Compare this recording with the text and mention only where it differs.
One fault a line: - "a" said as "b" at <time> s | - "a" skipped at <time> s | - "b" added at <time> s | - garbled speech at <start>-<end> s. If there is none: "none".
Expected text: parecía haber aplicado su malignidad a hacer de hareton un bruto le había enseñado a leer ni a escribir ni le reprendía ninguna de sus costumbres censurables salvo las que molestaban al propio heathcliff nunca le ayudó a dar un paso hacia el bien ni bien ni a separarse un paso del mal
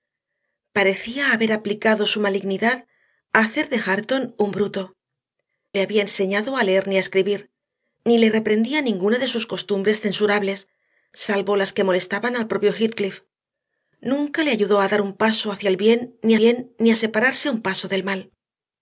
none